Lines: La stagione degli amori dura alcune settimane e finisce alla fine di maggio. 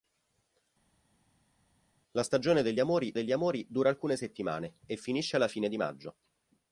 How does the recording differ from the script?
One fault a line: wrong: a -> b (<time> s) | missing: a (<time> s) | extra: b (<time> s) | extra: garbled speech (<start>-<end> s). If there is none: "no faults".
extra: degli amori (3.1 s)